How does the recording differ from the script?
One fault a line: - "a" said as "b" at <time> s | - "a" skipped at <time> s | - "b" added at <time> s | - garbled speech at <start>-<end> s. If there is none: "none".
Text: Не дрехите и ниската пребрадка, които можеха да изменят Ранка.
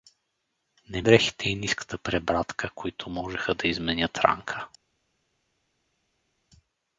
none